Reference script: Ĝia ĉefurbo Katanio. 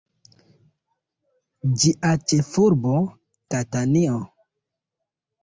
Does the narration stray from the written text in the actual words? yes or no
no